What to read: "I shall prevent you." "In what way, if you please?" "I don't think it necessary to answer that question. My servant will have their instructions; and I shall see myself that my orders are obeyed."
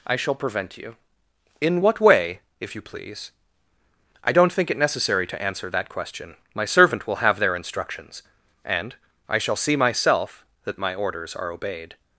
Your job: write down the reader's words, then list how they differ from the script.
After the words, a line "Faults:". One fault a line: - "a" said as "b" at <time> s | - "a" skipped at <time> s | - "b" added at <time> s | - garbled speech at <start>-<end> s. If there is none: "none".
"I shall prevent you." "In what way, if you please?" "I don't think it necessary to answer that question. My servant will have their instructions; and I shall see myself that my orders are obeyed."
Faults:
none